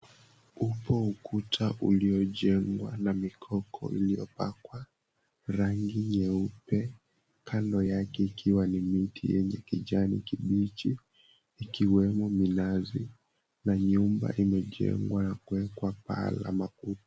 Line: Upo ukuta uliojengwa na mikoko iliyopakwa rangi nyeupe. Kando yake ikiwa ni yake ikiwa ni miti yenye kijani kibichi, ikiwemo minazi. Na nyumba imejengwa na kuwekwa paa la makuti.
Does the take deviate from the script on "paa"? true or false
false